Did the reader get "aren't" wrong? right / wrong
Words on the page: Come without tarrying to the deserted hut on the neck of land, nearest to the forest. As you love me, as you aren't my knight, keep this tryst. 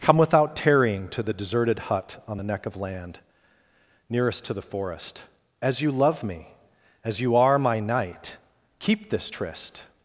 wrong